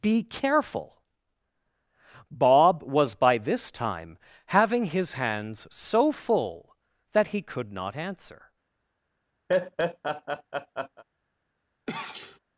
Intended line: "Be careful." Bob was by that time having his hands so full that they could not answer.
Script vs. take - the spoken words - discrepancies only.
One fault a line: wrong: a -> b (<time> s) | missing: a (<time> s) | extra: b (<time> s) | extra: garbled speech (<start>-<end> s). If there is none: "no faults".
wrong: that -> this (3.4 s)
wrong: they -> he (7.3 s)